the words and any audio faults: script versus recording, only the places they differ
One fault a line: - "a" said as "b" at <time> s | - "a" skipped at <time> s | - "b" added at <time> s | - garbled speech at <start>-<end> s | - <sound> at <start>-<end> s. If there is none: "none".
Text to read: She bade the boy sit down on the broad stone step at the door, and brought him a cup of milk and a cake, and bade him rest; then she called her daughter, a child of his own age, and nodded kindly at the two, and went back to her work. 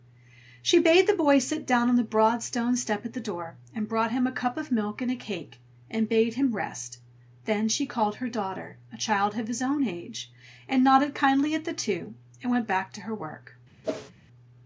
- whoosh at 13.8-14.1 s